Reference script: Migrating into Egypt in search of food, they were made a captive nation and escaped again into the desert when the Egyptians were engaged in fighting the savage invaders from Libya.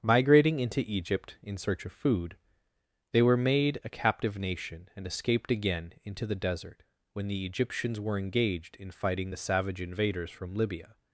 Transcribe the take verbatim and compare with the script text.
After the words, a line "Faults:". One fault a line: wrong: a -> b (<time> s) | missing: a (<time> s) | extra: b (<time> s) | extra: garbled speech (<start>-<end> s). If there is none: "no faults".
Migrating into Egypt in search of food, they were made a captive nation and escaped again into the desert when the Egyptians were engaged in fighting the savage invaders from Libya.
Faults:
no faults